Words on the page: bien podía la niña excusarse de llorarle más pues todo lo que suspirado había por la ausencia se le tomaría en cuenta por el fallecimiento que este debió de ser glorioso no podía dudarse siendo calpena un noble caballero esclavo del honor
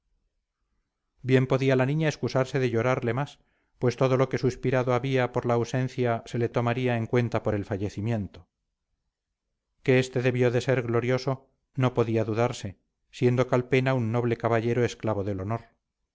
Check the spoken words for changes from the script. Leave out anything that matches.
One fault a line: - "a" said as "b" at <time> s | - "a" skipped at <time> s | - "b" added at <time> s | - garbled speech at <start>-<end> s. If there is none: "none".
none